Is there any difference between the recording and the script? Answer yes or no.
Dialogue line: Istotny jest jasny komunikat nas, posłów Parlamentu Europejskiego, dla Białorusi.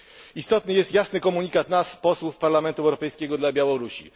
no